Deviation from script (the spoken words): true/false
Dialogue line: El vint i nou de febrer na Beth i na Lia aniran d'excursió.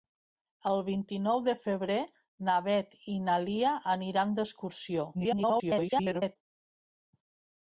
true